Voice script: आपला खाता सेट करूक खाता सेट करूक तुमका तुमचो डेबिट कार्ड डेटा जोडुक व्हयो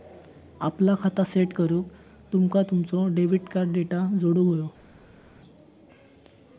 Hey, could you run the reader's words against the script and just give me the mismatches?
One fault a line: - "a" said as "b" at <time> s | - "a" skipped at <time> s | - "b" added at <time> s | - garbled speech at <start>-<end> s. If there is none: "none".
- "खाता सेट करूक" skipped at 1.9 s